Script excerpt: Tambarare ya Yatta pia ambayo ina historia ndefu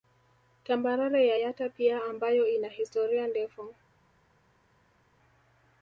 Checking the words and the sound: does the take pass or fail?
pass